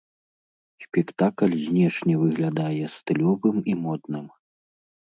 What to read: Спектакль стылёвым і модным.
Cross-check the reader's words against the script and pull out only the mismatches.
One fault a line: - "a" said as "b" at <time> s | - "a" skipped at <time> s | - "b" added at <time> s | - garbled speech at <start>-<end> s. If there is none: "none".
- "знешне выглядае" added at 1.7 s